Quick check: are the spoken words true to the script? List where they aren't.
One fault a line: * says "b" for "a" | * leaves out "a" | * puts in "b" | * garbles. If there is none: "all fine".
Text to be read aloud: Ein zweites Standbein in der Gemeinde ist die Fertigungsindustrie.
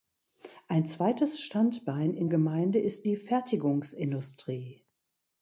* leaves out "der"